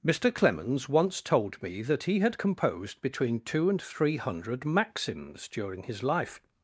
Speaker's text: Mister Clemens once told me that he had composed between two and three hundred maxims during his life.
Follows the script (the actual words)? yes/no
yes